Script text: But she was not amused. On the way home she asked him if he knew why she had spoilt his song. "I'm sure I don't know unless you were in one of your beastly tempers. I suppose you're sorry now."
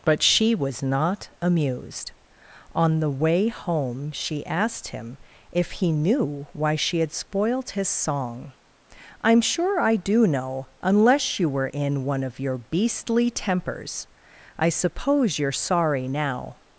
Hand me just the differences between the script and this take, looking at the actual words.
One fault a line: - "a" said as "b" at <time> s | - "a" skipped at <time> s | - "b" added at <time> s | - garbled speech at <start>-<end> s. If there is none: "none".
- "don't" said as "do" at 10.0 s